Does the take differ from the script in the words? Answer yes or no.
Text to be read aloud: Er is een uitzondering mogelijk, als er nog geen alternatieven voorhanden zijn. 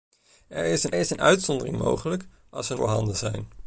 yes